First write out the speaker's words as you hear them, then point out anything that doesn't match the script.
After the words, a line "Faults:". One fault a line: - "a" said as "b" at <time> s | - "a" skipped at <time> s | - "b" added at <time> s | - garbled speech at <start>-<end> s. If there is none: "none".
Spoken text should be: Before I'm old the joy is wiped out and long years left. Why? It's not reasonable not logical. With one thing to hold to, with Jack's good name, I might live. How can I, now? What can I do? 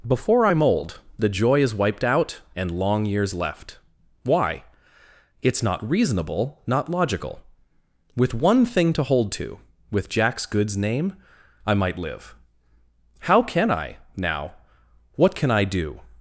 Before I'm old the joy is wiped out and long years left. Why? It's not reasonable not logical. With one thing to hold to, with Jack's goods name, I might live. How can I, now? What can I do?
Faults:
- "good" said as "goods" at 10.4 s